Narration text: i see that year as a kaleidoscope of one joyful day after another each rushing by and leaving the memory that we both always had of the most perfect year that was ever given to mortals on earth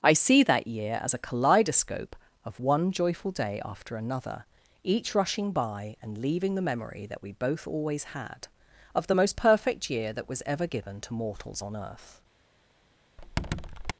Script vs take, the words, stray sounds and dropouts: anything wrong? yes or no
yes